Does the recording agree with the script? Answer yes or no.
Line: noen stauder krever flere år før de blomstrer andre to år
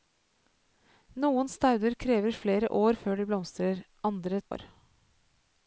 no